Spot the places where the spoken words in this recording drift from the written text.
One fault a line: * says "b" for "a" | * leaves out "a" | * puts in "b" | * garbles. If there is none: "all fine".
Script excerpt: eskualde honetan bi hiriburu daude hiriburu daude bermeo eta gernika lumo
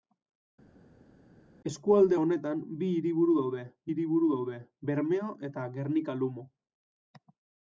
all fine